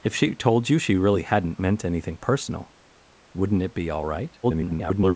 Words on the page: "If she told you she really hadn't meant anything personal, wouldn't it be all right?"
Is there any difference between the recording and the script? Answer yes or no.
yes